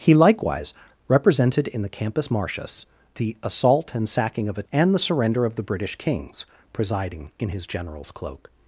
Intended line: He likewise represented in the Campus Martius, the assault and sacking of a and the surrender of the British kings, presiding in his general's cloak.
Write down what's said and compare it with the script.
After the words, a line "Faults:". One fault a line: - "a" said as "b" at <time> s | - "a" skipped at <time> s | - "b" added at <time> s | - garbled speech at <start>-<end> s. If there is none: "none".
He likewise represented in the Campus Martius, the assault and sacking of a and the surrender of the British kings, presiding in his general's cloak.
Faults:
none